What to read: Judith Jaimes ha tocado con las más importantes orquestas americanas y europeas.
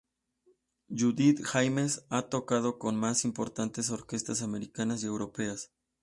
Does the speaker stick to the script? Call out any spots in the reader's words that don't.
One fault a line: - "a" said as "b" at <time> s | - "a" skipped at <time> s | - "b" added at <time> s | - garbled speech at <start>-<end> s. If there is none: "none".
none